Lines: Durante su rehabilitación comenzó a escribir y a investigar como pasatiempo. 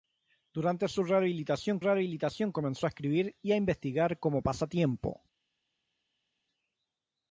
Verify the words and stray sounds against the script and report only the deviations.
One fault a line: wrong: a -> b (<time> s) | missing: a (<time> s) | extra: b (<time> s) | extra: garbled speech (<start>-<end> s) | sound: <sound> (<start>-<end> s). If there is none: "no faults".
extra: rehabilitación (1.8 s)